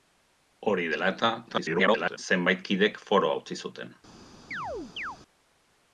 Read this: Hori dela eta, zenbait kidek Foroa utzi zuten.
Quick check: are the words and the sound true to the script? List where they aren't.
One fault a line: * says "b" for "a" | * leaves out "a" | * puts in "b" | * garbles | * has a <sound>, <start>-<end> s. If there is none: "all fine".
* garbles
* has a chirp, 4.5-5.2 s